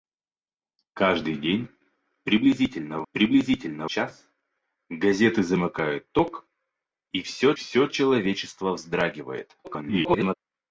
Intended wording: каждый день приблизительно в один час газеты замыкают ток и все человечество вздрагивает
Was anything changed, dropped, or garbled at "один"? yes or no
yes